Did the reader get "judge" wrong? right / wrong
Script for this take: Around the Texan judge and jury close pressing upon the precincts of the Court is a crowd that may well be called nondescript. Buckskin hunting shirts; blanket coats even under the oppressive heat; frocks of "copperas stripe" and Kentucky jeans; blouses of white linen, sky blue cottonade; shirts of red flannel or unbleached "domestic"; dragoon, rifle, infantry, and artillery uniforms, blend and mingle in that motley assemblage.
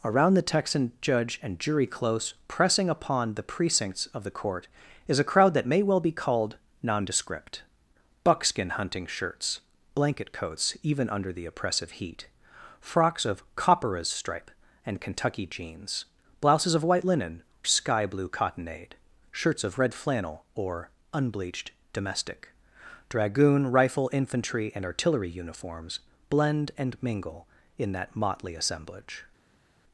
right